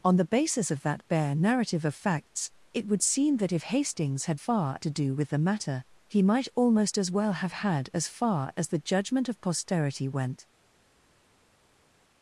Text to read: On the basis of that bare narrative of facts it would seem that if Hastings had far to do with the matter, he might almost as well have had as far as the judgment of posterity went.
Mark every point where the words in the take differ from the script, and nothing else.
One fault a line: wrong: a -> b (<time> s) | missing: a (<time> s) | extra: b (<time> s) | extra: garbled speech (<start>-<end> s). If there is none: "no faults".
no faults